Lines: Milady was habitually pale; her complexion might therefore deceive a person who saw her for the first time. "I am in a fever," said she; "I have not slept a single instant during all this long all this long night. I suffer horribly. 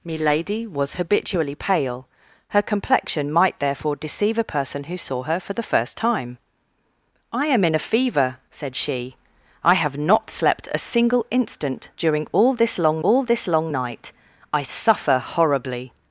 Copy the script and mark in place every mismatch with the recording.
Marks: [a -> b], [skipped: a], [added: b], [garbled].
Milady was habitually pale; her complexion might therefore deceive a person who saw her for the first time. "I am in a fever," said she; "I have not slept a single instant during all this long all this long night. I suffer horribly.